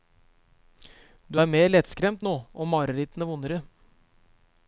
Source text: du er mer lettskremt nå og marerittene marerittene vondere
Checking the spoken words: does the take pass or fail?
fail